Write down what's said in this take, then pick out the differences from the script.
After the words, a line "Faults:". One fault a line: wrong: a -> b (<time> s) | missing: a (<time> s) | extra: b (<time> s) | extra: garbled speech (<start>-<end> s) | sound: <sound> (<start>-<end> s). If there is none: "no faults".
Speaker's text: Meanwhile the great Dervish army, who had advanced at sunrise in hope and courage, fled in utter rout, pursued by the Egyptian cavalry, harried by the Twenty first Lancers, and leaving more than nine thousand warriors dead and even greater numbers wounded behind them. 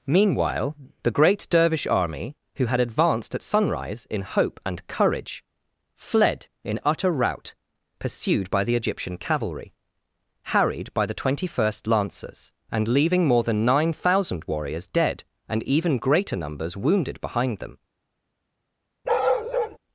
Meanwhile the great Dervish army, who had advanced at sunrise in hope and courage, fled in utter rout, pursued by the Egyptian cavalry, harried by the Twenty first Lancers, and leaving more than nine thousand warriors dead and even greater numbers wounded behind them.
Faults:
sound: bark (19.0-19.8 s)